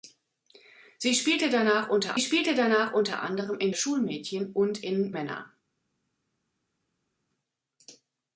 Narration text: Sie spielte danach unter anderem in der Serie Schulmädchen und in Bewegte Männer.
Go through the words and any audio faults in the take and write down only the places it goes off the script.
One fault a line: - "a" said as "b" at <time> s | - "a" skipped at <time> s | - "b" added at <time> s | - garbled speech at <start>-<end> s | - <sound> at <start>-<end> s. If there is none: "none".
- "spielte danach unter" added at 2.2 s
- "der Serie" skipped at 3.7 s
- "Bewegte" skipped at 5.1 s